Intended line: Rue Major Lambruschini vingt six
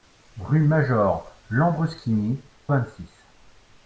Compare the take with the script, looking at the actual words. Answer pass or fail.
pass